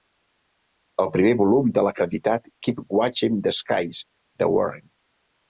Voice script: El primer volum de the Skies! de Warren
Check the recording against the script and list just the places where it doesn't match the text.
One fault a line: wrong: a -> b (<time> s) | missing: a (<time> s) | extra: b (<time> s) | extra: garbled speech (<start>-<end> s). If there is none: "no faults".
extra: l'acreditat Keep Watching (1.9 s)